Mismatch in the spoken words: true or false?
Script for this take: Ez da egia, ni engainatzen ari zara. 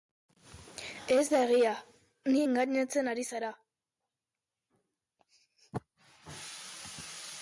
false